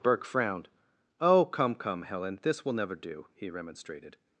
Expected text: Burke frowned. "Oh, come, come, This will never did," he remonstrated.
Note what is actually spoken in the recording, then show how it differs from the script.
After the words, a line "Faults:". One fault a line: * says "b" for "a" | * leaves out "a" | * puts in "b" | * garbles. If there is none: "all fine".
Burke frowned. "Oh, come, come, Helen, this will never do," he remonstrated.
Faults:
* puts in "Helen"
* says "do" for "did"